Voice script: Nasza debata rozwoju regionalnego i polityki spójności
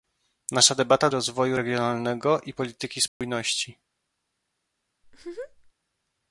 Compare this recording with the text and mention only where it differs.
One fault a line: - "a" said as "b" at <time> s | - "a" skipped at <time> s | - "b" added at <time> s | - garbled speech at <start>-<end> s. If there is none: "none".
none